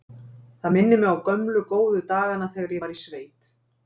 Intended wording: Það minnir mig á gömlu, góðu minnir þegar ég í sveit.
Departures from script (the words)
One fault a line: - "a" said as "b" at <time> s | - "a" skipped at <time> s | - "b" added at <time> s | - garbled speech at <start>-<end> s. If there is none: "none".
- "minnir" said as "dagana" at 2.1 s
- "var" added at 2.8 s